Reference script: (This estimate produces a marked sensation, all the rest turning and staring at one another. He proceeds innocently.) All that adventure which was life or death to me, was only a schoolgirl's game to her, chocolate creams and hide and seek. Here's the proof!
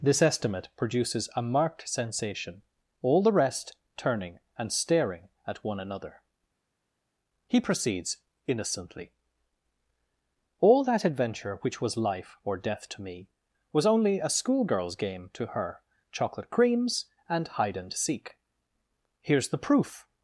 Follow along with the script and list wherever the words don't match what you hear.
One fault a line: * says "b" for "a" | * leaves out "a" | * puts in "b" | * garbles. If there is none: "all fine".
all fine